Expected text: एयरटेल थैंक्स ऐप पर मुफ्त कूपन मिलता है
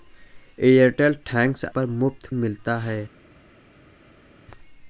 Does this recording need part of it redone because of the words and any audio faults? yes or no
yes